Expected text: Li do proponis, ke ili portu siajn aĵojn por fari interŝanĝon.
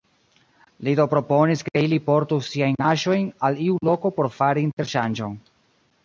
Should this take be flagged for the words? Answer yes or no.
yes